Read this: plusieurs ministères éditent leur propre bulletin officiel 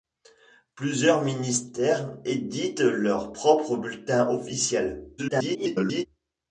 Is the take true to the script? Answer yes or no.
no